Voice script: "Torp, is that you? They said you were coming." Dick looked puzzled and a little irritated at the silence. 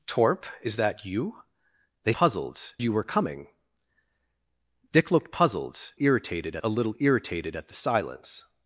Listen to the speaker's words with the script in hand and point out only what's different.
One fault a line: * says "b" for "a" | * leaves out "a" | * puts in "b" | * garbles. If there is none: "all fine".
* says "puzzled" for "said"
* says "irritated" for "and"